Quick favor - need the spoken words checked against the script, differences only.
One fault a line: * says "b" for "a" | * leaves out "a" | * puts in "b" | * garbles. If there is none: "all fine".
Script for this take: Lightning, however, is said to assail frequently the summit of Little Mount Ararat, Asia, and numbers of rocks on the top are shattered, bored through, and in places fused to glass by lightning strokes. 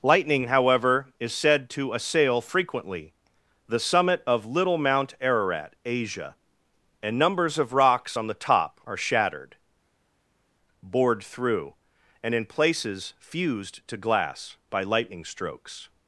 all fine